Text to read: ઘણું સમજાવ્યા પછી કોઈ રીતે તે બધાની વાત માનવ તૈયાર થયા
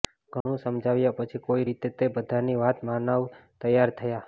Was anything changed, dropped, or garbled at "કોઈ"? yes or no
no